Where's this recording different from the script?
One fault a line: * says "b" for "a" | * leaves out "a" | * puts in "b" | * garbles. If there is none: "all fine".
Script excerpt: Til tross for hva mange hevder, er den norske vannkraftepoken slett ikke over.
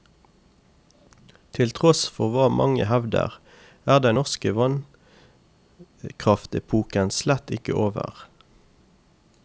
all fine